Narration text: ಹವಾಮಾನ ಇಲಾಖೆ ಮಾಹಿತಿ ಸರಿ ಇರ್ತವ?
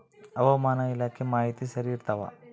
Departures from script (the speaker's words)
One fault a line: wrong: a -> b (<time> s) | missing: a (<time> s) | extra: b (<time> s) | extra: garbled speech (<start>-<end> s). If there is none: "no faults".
no faults